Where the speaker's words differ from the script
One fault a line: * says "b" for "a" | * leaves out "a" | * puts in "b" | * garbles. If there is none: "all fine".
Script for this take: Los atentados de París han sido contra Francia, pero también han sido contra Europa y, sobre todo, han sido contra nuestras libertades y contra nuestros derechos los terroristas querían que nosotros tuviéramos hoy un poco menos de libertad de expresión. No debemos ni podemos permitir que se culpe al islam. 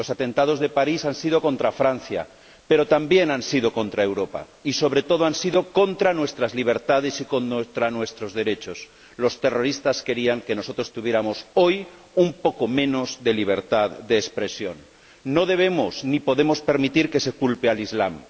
all fine